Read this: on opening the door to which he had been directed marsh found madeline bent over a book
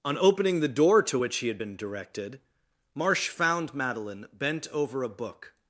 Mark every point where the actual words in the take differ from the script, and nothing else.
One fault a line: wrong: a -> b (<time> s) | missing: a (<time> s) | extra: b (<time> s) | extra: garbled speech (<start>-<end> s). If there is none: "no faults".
no faults